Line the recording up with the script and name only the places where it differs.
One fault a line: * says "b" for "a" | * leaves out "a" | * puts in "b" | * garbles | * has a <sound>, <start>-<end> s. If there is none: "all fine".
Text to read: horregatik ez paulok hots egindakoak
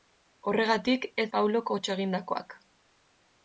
all fine